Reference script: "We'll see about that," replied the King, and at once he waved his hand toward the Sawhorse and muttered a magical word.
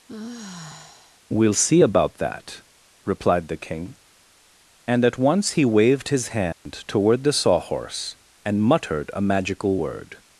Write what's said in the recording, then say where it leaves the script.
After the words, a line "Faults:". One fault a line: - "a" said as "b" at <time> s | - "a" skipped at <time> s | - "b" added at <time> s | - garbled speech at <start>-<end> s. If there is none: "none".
"We'll see about that," replied the King, and at once he waved his hand toward the Sawhorse and muttered a magical word.
Faults:
none